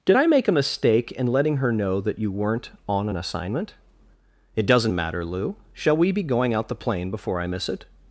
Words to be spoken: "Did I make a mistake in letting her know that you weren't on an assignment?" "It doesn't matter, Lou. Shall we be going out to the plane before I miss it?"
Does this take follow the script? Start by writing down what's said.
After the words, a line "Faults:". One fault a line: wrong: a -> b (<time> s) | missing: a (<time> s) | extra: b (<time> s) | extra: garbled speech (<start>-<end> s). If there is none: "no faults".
"Did I make a mistake in letting her know that you weren't on an assignment?" "It doesn't matter, Lou. Shall we be going out the plane before I miss it?"
Faults:
missing: to (6.7 s)